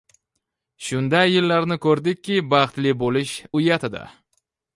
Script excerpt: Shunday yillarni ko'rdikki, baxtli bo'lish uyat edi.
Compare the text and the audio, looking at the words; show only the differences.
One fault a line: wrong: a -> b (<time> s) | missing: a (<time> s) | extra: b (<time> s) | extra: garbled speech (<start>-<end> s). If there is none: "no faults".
no faults